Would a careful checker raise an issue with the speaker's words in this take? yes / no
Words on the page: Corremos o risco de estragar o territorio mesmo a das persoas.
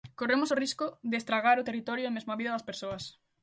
yes